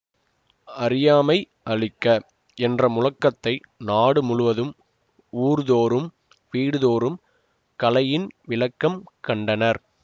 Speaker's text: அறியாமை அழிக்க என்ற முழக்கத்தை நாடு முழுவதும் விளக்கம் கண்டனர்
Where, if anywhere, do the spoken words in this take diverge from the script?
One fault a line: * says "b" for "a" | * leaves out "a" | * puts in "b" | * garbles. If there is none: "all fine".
* puts in "ஊர்தோறும் வீடுதோறும் கலையின்"